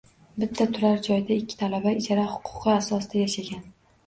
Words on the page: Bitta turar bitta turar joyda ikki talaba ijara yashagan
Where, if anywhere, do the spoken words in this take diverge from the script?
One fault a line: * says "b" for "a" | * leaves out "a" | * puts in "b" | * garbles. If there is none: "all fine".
* leaves out "bitta turar"
* puts in "huquqi asosida"